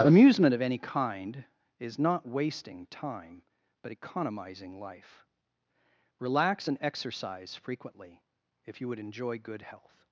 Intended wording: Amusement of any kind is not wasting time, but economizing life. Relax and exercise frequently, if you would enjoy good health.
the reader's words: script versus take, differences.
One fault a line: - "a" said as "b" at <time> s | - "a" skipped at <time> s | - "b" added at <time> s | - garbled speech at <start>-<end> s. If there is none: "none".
none